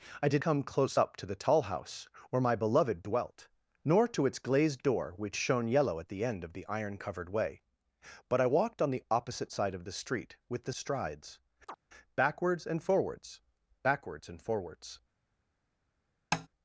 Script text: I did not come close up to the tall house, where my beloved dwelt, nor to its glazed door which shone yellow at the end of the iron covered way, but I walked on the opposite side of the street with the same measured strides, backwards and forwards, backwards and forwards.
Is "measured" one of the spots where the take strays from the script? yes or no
yes